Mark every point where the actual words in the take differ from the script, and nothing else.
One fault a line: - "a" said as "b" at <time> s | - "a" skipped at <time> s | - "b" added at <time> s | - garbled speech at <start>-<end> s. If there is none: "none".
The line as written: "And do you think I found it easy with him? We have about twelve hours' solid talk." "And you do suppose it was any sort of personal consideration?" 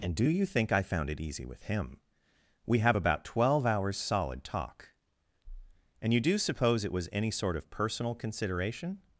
none